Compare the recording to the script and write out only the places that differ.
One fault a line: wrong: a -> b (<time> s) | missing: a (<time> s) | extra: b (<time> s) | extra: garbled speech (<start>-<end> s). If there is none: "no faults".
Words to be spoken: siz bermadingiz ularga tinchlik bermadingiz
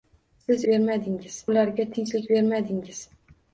no faults